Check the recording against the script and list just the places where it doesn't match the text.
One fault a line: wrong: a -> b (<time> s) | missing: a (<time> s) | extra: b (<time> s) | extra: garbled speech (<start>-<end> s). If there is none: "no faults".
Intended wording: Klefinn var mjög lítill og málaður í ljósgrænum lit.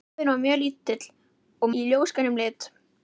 missing: málaður (1.7 s)